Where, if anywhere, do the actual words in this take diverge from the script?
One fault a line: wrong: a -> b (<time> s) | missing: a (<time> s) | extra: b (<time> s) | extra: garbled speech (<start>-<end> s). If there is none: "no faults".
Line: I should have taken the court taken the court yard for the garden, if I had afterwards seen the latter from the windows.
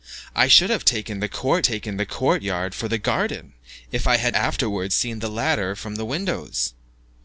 no faults